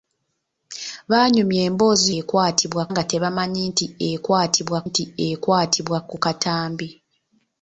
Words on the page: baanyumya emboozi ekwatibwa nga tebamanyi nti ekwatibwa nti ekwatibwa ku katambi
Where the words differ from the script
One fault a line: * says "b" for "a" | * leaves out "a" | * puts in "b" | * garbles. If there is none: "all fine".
all fine